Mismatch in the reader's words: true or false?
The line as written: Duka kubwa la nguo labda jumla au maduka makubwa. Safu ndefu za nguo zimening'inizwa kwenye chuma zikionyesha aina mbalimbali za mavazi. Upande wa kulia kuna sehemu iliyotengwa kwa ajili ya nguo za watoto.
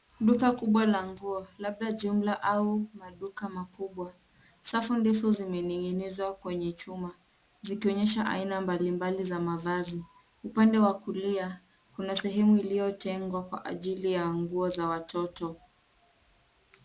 true